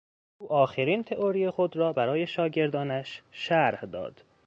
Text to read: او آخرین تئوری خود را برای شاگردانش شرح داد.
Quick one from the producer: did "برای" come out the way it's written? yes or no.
yes